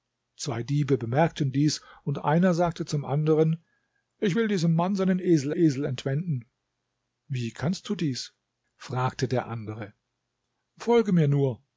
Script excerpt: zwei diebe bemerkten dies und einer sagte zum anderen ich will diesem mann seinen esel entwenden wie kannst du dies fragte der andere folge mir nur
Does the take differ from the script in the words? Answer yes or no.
yes